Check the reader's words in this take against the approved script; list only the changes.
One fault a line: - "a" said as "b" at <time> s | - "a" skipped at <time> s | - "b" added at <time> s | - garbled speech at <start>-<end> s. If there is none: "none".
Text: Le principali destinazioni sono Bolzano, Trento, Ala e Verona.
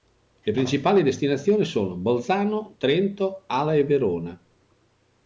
none